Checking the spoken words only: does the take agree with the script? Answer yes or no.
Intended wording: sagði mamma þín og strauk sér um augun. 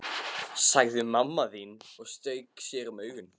yes